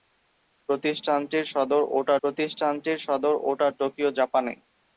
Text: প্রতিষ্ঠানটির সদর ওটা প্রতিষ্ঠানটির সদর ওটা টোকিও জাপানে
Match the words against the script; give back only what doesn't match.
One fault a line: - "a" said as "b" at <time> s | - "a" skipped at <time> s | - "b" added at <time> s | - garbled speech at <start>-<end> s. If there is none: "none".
none